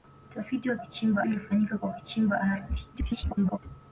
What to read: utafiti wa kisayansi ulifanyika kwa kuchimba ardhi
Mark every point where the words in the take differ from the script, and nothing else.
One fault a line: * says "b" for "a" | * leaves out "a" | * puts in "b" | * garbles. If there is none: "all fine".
* says "kuchimba" for "kisayansi"
* garbles